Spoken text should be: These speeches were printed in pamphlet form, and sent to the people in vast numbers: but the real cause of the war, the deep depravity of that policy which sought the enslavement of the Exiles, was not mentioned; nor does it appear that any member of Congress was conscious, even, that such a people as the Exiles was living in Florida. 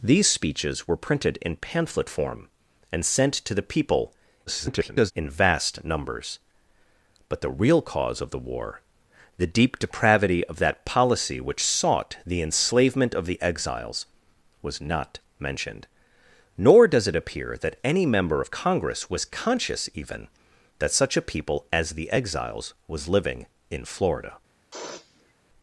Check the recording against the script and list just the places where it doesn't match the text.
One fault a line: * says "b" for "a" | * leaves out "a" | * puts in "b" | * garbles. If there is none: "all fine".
* garbles